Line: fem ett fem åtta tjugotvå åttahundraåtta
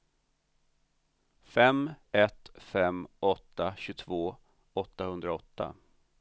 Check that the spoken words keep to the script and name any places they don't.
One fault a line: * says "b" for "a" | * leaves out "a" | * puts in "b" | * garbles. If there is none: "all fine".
all fine